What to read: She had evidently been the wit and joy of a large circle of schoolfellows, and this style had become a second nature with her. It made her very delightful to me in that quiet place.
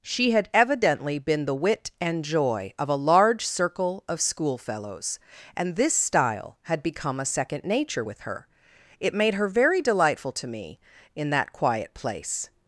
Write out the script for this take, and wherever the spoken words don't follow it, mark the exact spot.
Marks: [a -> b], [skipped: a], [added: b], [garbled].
She had evidently been the wit and joy of a large circle of schoolfellows, and this style had become a second nature with her. It made her very delightful to me in that quiet place.